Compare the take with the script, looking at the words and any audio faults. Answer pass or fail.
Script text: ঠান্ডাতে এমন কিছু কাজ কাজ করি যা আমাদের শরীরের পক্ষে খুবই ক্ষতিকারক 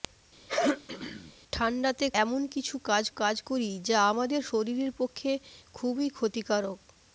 fail